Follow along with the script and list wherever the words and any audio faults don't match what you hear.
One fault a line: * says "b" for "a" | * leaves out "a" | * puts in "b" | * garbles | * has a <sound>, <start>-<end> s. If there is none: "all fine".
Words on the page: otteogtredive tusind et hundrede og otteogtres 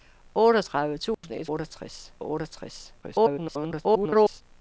* has a dropout, 1.1-1.2 s
* says "otteogtres" for "hundrede"
* garbles